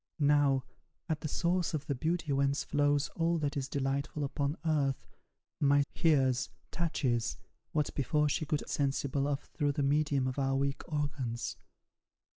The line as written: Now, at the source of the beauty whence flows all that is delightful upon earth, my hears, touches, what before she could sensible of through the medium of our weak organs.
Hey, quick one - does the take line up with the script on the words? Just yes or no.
yes